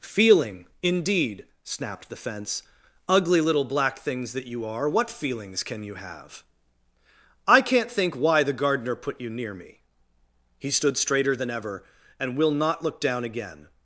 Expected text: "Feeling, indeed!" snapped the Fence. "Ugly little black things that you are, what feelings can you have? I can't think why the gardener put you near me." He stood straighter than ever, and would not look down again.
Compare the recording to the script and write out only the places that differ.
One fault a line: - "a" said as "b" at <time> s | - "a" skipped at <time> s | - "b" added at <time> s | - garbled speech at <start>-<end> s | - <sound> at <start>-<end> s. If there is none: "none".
- "would" said as "will" at 12.3 s